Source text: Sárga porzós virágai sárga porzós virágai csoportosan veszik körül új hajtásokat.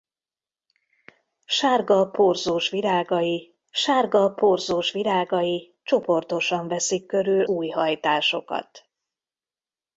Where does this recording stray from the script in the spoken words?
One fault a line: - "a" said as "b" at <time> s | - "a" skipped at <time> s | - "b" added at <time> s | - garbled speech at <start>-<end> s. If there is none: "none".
none